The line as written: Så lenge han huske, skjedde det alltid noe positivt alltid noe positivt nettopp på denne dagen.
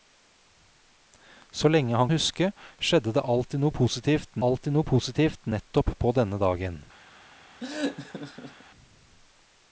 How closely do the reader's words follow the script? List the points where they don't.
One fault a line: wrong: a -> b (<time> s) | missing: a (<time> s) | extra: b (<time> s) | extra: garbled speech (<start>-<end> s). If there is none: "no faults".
no faults